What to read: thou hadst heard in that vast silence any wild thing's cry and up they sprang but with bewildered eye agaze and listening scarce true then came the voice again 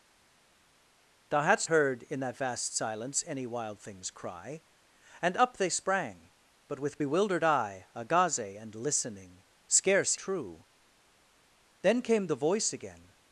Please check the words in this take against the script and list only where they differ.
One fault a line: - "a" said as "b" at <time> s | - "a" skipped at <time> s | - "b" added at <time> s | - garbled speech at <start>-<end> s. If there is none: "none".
none